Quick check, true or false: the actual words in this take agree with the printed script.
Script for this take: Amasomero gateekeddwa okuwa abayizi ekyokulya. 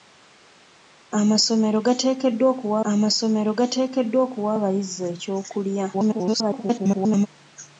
false